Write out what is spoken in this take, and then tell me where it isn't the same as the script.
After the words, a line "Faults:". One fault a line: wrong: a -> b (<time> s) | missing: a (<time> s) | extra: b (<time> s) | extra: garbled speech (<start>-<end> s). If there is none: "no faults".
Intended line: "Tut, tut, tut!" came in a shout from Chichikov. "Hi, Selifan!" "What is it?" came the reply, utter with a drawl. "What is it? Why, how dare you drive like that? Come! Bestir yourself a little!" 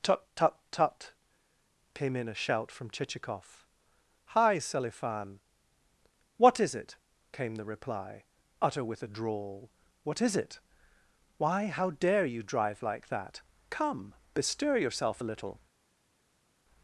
"Tut, tut, tut!" came in a shout from Chichikov. "Hi, Selifan!" "What is it?" came the reply, utter with a drawl. "What is it? Why, how dare you drive like that? Come! Bestir yourself a little!"
Faults:
no faults